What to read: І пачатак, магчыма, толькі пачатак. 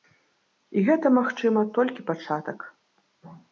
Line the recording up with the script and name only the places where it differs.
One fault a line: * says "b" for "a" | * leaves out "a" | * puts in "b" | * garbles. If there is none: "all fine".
* says "гэта" for "пачатак"